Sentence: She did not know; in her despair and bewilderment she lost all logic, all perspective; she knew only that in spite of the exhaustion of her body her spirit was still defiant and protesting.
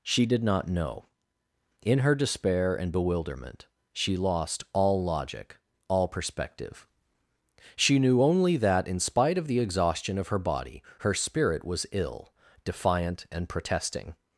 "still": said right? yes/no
no